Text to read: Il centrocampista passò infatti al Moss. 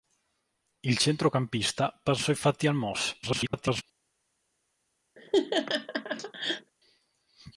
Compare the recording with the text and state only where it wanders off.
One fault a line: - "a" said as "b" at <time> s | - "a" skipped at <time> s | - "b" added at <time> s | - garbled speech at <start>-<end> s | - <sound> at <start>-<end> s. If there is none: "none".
- garbled speech at 3.2-3.8 s
- laugh at 5.2-6.7 s